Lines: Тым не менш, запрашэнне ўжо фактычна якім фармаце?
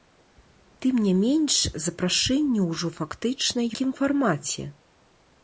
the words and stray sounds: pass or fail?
pass